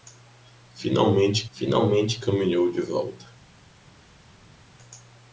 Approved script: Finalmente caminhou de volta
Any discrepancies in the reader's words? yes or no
yes